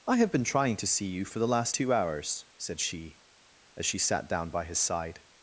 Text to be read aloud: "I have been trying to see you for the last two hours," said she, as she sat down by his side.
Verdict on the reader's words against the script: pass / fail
pass